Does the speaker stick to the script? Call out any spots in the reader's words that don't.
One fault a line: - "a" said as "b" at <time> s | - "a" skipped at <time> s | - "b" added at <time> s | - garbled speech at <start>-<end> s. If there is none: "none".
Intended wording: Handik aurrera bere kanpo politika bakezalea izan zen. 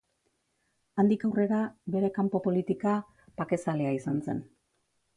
none